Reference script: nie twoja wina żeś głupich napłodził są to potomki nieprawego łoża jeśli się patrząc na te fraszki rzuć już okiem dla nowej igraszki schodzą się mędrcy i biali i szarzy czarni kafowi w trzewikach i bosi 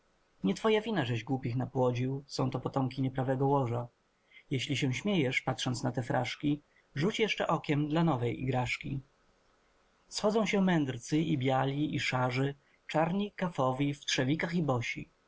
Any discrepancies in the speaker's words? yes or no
yes